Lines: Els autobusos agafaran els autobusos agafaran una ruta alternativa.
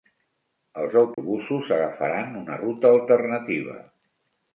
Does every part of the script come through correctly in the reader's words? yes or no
no